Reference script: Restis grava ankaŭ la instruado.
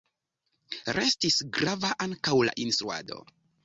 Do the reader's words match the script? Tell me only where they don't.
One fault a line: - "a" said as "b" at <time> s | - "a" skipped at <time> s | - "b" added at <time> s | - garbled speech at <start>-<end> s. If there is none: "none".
none